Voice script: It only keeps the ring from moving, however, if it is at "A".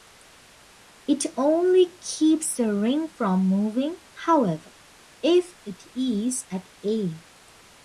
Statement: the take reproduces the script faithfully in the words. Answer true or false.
true